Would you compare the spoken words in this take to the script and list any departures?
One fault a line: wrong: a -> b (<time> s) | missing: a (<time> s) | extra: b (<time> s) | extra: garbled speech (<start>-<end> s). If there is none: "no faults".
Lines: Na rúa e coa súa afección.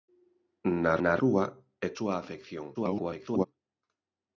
extra: na (1.0 s)
missing: coa (1.9 s)
extra: garbled speech (2.7-3.5 s)